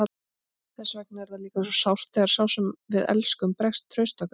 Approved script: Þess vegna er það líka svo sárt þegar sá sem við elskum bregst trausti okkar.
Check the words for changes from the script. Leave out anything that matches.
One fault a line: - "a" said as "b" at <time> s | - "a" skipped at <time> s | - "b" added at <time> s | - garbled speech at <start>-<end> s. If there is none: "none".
none